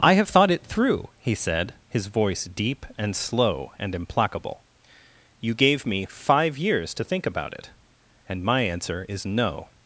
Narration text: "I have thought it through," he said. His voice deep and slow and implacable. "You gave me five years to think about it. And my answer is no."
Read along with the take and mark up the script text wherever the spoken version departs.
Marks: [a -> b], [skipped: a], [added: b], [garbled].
"I have thought it through," he said. His voice deep and slow and implacable. "You gave me five years to think about it. And my answer is no."